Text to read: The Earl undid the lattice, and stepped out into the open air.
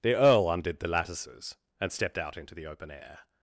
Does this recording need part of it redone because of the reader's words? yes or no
yes